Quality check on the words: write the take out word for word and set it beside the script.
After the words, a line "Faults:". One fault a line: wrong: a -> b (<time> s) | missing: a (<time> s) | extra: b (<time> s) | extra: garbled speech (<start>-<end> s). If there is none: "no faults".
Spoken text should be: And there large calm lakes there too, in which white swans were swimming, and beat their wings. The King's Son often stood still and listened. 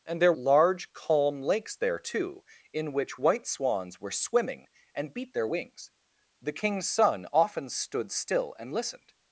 And there large calm lakes there too, in which white swans were swimming, and beat their wings. The King's Son often stood still and listened.
Faults:
no faults